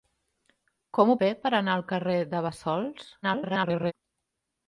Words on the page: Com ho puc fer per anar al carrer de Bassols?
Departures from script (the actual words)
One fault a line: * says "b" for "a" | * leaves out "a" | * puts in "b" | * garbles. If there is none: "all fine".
* leaves out "puc"
* garbles